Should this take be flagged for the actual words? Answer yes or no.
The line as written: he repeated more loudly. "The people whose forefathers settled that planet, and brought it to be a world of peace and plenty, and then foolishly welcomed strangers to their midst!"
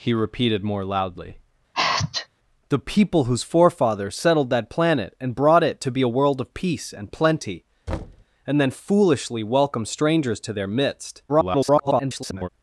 yes